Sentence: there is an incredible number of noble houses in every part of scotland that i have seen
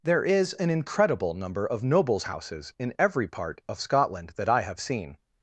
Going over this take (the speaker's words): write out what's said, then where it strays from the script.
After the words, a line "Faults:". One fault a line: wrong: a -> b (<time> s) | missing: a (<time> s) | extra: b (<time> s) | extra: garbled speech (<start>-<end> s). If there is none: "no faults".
there is an incredible number of nobles houses in every part of scotland that i have seen
Faults:
wrong: noble -> nobles (1.8 s)